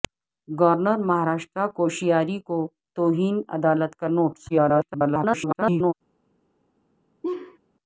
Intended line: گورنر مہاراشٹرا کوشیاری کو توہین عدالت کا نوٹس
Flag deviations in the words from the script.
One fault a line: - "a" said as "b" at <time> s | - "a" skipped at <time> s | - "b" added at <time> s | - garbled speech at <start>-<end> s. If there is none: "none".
- garbled speech at 4.5-5.9 s